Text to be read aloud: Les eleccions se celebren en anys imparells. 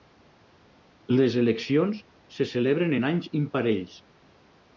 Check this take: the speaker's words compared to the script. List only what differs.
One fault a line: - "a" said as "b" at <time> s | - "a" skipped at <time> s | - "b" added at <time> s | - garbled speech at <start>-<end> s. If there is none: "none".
none